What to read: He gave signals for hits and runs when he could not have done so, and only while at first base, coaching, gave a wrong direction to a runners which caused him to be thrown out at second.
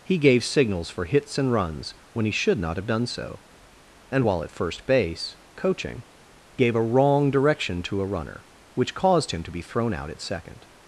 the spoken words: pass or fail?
fail